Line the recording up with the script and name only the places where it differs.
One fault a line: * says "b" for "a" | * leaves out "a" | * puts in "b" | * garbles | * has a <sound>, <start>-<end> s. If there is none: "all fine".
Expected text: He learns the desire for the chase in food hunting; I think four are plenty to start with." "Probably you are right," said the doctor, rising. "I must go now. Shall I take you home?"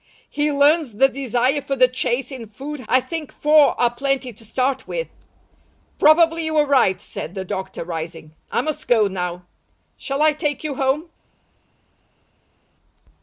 * leaves out "hunting"